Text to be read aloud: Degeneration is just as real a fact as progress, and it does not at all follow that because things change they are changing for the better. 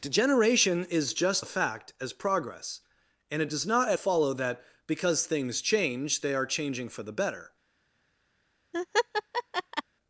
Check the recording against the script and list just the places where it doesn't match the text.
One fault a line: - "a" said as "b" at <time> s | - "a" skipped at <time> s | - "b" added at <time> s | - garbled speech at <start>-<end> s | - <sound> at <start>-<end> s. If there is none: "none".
- "as real" skipped at 1.5 s
- "all" skipped at 4.0 s
- laugh at 8.7-9.8 s